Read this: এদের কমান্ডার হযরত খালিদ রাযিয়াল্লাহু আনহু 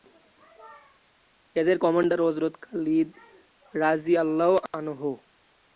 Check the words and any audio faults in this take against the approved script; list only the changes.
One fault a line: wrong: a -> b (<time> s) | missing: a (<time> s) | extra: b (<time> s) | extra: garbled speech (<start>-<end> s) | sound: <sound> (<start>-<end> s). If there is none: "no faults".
no faults